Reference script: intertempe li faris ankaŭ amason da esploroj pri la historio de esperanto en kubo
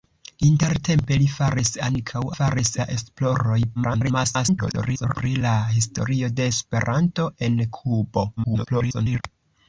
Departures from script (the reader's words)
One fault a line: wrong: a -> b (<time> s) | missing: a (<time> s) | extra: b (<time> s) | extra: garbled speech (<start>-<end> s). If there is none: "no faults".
wrong: amason -> faris (2.3 s)
extra: garbled speech (3.7-5.2 s)
extra: garbled speech (8.4-9.2 s)